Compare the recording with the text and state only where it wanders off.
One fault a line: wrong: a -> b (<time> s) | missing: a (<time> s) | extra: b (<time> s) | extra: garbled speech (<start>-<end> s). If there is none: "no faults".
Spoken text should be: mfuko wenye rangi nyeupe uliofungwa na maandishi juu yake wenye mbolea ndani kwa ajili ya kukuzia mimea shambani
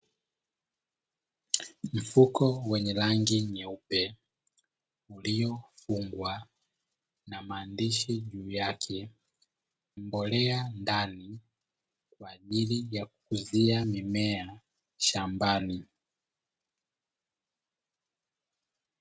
missing: wenye (9.1 s)